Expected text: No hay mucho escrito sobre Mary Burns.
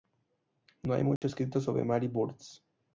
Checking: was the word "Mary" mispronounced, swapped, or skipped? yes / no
no